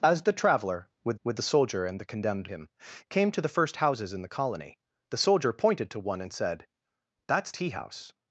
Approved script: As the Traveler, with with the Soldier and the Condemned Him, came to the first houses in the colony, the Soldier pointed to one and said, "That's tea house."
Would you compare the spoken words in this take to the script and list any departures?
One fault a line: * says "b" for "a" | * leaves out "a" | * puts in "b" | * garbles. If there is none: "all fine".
all fine